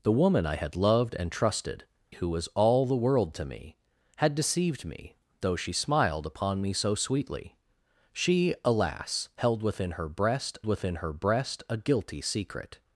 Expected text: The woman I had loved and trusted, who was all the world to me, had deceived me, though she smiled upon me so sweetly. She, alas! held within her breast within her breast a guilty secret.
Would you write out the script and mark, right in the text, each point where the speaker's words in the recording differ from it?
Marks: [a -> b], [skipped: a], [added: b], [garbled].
The woman I had loved and trusted, who was all the world to me, had deceived me, though she smiled upon me so sweetly. She, alas! held within her breast within her breast a guilty secret.